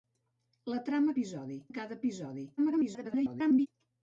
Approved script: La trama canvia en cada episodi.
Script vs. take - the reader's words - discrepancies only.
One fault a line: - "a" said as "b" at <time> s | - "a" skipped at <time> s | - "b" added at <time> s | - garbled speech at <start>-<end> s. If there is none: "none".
- "canvia" said as "episodi" at 1.1 s
- garbled speech at 2.6-3.7 s